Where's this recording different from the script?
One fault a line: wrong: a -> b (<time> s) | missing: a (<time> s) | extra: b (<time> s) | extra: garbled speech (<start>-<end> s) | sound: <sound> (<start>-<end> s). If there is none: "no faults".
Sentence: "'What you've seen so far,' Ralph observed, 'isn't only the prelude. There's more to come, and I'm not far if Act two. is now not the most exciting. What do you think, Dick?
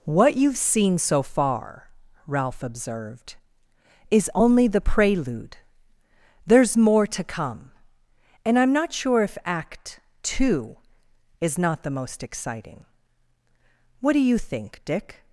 wrong: isn't -> is (4.1 s)
wrong: far -> sure (8.9 s)
missing: now (11.6 s)